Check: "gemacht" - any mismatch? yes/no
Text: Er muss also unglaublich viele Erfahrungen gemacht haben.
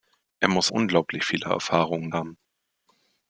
yes